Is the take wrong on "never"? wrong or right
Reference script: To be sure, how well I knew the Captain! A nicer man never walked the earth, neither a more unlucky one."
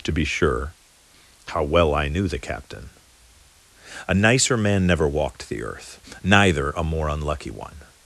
right